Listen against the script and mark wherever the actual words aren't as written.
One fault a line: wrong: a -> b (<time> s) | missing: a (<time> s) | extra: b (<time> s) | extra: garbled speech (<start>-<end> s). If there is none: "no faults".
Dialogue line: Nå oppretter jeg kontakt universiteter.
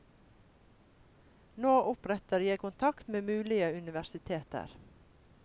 extra: med mulige (3.1 s)